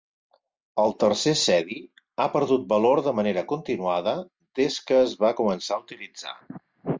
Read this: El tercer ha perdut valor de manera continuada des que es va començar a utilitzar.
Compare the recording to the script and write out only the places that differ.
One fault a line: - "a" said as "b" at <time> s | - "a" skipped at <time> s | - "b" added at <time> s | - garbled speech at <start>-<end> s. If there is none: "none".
- "cedi" added at 1.4 s